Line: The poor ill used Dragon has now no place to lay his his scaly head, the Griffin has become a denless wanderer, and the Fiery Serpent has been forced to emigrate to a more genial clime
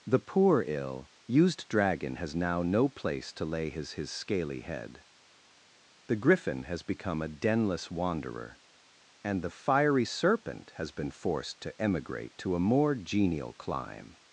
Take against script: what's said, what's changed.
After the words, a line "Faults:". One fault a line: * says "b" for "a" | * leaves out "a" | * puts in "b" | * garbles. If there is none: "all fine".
The poor ill used Dragon has now no place to lay his his scaly head, the Griffin has become a denless wanderer, and the Fiery Serpent has been forced to emigrate to a more genial clime
Faults:
all fine